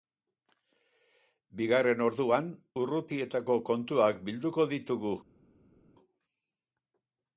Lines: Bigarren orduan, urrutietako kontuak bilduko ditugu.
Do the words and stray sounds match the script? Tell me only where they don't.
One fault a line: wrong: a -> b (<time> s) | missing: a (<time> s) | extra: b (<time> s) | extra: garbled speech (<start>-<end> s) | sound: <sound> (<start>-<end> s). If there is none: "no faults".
no faults